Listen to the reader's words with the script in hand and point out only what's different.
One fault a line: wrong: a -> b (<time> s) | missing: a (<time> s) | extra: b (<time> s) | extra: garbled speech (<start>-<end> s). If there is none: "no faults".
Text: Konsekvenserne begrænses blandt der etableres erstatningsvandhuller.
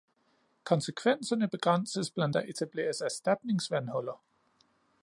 no faults